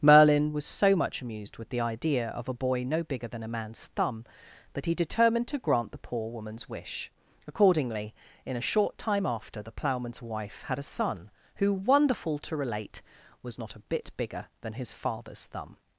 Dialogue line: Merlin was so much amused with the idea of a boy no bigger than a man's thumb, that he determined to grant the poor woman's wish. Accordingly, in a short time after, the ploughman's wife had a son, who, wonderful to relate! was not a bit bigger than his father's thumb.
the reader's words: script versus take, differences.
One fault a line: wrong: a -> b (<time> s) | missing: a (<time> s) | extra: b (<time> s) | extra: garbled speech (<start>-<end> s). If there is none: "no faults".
no faults